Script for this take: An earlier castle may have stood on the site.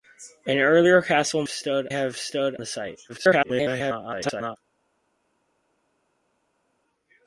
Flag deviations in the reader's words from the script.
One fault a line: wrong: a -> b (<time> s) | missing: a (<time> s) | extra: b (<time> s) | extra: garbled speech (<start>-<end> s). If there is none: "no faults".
wrong: may -> stood (1.5 s)
missing: on (2.6 s)
extra: garbled speech (3.1-4.6 s)